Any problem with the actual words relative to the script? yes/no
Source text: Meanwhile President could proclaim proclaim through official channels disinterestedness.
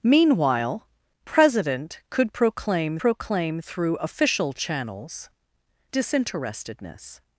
no